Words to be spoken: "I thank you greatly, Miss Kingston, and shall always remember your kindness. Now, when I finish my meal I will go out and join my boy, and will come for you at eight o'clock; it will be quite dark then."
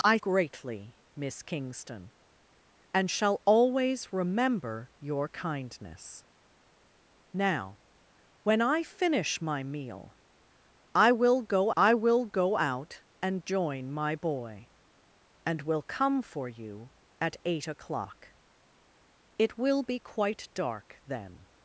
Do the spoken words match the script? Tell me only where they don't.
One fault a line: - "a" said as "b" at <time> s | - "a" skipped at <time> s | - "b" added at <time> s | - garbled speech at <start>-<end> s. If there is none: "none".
- "thank you" skipped at 0.2 s
- "I will go" added at 11.8 s